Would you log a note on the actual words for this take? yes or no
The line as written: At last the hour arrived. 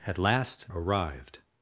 yes